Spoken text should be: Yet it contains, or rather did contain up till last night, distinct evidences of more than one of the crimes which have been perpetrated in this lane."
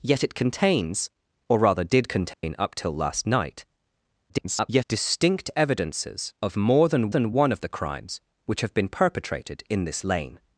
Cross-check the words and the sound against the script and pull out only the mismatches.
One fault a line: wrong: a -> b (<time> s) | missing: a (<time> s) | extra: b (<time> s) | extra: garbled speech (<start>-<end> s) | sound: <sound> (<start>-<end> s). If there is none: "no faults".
sound: dropout (2.3-2.4 s)
extra: garbled speech (4.3-4.8 s)
extra: than (7.1 s)